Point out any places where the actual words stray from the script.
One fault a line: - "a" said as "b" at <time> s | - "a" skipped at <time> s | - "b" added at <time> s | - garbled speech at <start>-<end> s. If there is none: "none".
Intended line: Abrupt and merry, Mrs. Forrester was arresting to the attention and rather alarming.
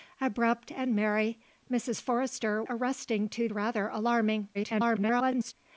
- "was" skipped at 2.6 s
- "the attention and" skipped at 3.5 s
- garbled speech at 4.5-5.5 s